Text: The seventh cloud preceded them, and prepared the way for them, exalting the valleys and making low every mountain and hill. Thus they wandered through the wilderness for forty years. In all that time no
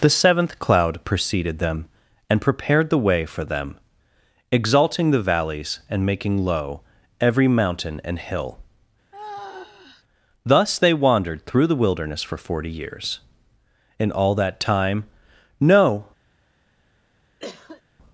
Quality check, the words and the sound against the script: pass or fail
fail